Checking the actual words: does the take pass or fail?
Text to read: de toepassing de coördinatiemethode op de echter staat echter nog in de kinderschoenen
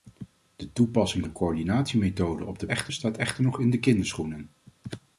pass